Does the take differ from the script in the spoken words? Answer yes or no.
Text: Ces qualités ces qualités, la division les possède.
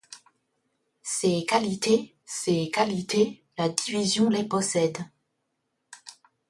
no